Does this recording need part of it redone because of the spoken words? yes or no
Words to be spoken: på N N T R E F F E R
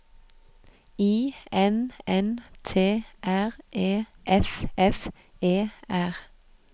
yes